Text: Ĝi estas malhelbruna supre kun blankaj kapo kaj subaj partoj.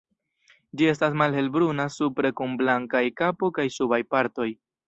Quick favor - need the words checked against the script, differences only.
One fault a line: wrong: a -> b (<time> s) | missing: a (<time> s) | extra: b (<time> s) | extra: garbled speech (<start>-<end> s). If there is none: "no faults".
no faults